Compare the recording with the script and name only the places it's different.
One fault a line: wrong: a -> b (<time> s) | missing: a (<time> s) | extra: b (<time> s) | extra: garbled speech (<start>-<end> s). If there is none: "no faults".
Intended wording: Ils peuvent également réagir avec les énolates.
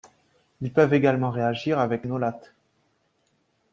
missing: les (2.1 s)